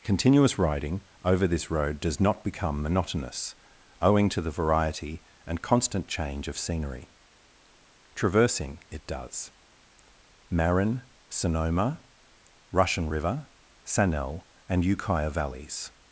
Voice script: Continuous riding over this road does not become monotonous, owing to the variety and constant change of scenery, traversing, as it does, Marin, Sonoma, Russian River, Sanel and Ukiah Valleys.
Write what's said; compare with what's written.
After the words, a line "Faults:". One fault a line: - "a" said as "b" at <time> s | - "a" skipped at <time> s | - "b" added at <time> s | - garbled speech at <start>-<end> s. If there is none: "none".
Continuous riding over this road does not become monotonous, owing to the variety and constant change of scenery, traversing, it does, Marin, Sonoma, Russian River, Sanel and Ukiah Valleys.
Faults:
- "as" skipped at 8.8 s